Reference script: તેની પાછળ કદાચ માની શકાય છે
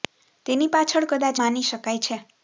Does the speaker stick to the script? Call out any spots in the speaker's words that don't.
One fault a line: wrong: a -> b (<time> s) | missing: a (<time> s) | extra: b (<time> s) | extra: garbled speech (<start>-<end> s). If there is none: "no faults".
no faults